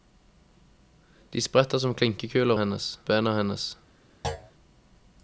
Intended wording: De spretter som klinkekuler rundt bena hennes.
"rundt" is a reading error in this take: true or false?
true